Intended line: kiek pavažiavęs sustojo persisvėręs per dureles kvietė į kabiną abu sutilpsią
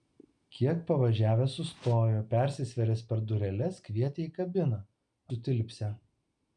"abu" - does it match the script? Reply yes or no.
no